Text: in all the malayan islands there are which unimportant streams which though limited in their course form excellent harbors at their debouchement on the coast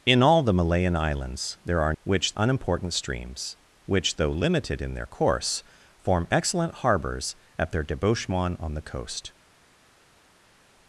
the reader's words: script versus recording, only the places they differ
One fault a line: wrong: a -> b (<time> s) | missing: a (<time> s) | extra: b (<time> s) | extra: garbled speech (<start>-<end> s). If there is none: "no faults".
no faults